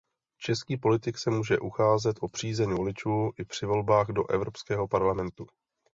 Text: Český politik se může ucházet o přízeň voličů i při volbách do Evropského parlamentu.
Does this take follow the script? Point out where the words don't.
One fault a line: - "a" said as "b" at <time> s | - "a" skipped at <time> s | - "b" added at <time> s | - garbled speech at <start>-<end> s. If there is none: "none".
none